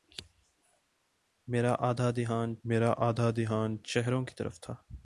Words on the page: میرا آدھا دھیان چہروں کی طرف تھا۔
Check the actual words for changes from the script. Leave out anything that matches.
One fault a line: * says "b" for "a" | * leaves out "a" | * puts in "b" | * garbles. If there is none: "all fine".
* puts in "میرا آدھا دھیان"